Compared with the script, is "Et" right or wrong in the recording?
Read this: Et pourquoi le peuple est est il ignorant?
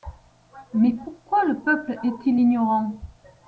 wrong